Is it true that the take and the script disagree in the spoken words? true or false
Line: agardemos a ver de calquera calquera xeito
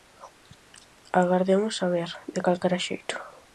true